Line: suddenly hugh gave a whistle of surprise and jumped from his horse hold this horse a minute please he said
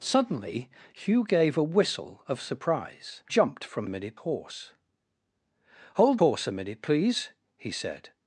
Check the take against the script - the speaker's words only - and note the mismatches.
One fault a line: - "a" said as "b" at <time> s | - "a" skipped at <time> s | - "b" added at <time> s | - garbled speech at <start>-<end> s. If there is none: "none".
- "and" skipped at 3.2 s
- "his" said as "minute" at 3.9 s
- "this" skipped at 6.2 s